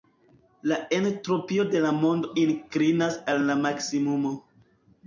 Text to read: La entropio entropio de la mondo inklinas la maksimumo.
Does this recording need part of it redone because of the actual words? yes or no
yes